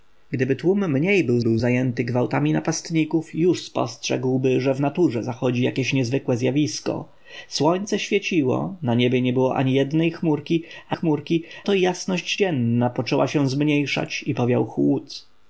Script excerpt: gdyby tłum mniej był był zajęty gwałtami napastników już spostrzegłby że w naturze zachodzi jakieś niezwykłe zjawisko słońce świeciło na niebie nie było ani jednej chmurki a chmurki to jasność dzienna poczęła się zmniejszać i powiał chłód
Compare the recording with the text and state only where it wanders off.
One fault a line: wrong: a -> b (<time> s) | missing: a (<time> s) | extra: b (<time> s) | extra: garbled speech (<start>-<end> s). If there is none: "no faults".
no faults